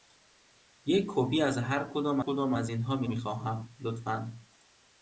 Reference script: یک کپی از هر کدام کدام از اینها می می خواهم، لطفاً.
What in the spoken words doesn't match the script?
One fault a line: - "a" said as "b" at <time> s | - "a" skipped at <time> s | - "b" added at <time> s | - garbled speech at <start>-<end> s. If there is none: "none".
none